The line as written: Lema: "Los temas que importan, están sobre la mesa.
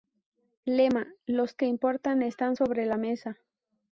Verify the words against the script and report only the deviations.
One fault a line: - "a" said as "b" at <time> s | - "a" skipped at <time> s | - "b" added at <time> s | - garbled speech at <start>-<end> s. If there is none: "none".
- "temas" skipped at 1.6 s